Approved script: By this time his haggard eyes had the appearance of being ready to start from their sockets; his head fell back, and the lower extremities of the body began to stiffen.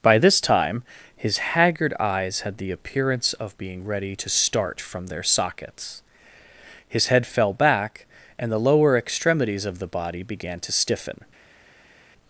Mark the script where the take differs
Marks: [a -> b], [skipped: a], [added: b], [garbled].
By this time his haggard eyes had the appearance of being ready to start from their sockets; his head fell back, and the lower extremities of the body began to stiffen.